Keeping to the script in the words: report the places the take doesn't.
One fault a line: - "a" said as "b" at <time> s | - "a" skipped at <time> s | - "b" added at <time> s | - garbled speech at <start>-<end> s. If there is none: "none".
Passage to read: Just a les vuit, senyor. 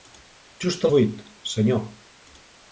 - "les" skipped at 0.9 s